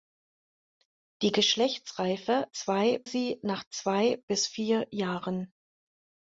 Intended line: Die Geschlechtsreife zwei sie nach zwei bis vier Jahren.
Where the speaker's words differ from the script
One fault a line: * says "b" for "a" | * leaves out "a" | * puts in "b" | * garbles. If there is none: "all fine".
all fine